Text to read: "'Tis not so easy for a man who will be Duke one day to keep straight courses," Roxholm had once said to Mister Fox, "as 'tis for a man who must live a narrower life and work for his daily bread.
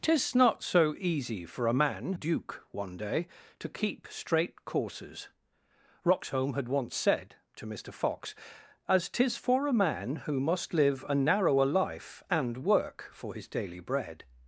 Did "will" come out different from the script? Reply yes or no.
yes